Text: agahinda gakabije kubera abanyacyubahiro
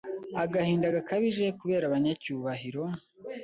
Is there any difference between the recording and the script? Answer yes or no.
no